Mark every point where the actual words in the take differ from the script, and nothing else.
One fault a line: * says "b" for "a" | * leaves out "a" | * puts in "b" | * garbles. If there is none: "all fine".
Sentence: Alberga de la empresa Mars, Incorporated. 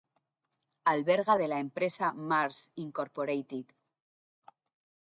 all fine